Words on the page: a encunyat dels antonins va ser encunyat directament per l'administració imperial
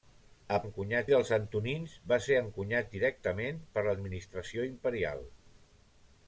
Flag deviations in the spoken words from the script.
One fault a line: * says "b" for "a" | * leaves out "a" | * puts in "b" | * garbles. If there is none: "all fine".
all fine